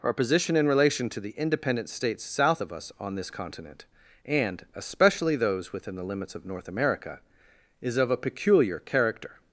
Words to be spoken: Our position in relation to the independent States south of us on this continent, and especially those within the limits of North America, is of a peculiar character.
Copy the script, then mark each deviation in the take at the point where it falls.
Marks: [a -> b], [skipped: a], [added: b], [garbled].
Our position in relation to the independent States south of us on this continent, and especially those within the limits of North America, is of a peculiar character.